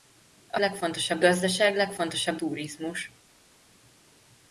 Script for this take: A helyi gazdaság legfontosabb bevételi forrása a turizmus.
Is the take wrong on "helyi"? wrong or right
wrong